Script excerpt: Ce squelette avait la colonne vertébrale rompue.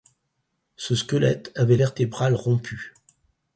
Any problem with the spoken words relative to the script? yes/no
yes